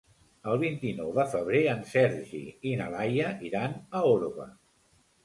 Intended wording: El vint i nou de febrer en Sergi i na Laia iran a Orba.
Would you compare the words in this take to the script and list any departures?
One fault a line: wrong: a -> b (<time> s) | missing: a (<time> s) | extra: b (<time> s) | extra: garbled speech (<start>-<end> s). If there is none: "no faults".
no faults